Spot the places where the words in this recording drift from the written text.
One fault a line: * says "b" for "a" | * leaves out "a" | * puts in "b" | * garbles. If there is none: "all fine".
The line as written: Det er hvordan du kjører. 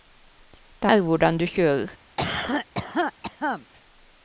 all fine